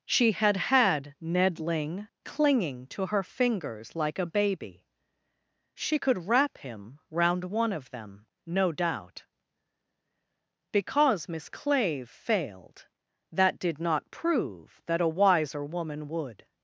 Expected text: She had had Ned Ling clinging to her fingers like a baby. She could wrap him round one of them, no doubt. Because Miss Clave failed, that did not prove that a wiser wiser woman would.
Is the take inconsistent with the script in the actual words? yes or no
yes